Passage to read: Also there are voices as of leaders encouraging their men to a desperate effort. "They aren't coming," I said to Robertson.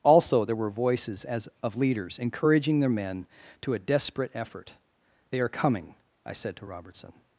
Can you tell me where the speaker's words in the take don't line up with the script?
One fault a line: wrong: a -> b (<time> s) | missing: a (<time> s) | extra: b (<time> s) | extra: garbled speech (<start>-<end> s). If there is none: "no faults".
wrong: are -> were (0.6 s)
wrong: aren't -> are (5.4 s)